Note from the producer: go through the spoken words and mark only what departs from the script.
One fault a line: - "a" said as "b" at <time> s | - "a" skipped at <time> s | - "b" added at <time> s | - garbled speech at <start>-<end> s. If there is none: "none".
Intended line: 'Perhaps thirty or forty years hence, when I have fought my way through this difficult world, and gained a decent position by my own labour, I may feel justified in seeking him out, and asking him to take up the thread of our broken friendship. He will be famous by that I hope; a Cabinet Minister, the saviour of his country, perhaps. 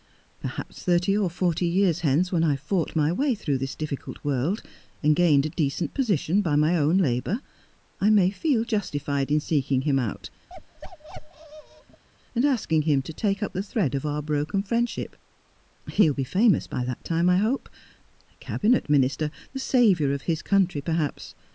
- "time" added at 17.0 s